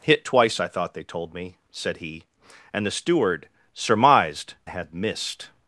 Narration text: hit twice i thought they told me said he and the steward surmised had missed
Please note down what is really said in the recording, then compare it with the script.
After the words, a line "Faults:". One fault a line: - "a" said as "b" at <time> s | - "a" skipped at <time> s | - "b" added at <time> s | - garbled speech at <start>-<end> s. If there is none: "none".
hit twice i thought they told me said he and the steward surmised had missed
Faults:
none